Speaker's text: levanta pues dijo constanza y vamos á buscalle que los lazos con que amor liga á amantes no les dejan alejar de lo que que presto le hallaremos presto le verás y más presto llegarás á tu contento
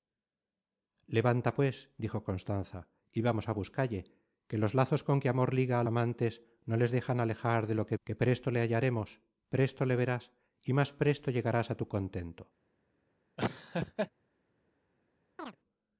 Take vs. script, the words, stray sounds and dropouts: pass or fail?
fail